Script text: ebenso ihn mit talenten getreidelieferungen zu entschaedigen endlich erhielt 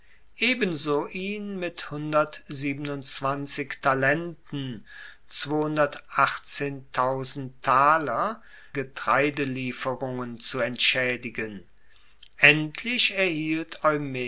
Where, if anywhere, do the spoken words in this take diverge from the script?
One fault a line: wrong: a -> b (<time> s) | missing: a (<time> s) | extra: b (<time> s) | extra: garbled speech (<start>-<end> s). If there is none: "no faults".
no faults